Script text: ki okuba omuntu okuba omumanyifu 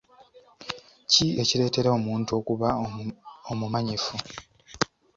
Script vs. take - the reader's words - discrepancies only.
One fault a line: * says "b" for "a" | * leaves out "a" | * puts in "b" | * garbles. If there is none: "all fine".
* says "ekireetera" for "okuba"